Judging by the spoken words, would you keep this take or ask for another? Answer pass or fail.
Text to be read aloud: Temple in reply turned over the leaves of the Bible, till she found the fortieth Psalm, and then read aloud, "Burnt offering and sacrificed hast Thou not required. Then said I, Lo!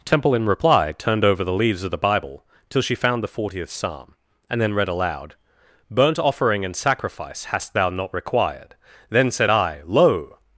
fail